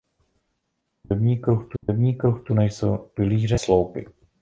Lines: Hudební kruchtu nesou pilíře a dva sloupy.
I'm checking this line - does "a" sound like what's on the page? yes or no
no